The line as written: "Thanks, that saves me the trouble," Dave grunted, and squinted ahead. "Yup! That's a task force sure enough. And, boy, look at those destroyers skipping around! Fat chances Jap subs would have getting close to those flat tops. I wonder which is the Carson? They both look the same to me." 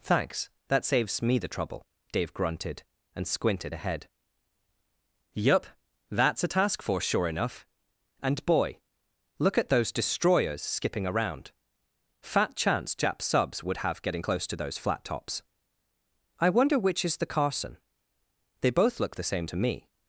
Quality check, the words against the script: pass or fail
fail